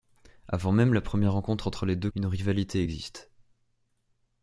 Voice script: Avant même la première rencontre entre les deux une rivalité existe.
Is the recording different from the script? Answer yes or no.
no